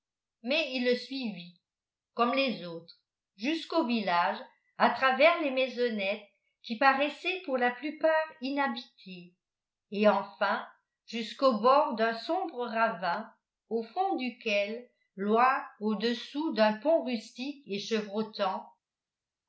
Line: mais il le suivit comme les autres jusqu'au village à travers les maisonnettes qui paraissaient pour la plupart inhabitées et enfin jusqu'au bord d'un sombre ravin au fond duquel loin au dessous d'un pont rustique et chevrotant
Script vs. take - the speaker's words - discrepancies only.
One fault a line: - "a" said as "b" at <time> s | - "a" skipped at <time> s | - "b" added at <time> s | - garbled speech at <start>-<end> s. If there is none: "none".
none